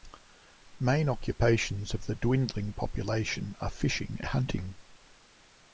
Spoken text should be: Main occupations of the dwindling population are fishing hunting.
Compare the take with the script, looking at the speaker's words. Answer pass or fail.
pass